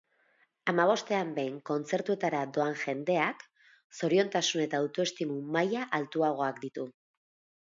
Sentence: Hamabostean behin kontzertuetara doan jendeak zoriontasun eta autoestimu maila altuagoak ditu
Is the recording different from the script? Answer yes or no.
no